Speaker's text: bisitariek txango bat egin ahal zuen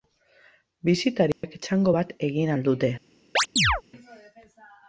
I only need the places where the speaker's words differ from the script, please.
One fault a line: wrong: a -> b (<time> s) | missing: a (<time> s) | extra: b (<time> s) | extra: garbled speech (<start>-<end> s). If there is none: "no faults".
wrong: zuen -> dute (2.7 s)